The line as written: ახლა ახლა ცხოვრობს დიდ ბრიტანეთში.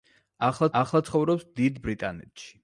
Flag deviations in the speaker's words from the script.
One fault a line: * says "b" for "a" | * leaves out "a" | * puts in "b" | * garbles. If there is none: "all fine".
all fine